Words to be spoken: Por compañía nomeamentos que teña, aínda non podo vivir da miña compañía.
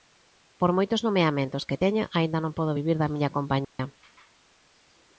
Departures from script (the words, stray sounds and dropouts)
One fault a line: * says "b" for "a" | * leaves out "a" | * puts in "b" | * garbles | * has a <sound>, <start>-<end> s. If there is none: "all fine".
* says "moitos" for "compañía"
* has a dropout, 3.6-3.8 s